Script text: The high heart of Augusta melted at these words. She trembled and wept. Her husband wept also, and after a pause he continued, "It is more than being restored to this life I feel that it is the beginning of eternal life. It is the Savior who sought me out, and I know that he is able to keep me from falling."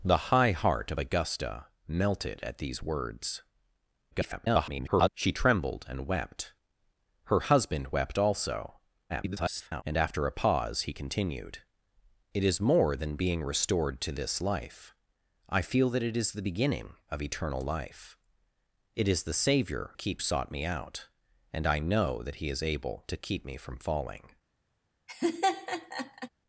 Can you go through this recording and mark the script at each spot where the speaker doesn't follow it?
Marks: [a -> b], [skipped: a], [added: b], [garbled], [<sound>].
The high heart of Augusta melted at these words. [garbled] She trembled and wept. Her husband wept also, [garbled] and after a pause he continued, "It is more than being restored to this life I feel that it is the beginning of eternal life. It is the Savior [who -> keep] sought me out, and I know that he is able to keep me from falling." [laugh]